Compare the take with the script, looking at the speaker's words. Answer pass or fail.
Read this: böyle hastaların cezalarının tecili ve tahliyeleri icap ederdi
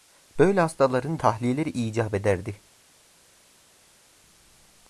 fail